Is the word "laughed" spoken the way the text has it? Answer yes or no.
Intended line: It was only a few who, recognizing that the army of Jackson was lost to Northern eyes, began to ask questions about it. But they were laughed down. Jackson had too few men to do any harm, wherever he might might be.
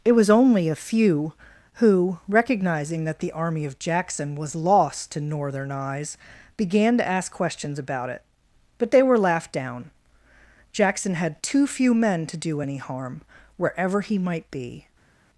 yes